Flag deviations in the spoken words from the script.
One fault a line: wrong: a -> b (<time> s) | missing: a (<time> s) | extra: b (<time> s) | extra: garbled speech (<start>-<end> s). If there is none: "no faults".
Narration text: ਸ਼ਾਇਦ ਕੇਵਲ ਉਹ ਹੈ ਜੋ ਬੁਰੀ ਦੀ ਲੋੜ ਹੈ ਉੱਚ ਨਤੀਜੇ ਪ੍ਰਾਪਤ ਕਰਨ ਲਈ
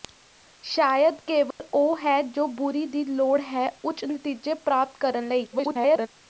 extra: garbled speech (5.5-6.1 s)